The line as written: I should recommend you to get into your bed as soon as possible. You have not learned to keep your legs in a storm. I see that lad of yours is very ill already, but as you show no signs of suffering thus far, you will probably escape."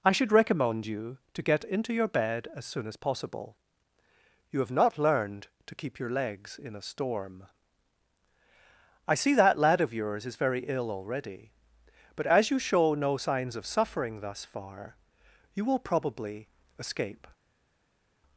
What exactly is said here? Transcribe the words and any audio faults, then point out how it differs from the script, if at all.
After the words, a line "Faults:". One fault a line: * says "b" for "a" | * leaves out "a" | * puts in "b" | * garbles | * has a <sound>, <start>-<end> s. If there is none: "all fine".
I should recommend you to get into your bed as soon as possible. You have not learned to keep your legs in a storm. I see that lad of yours is very ill already, but as you show no signs of suffering thus far, you will probably escape."
Faults:
all fine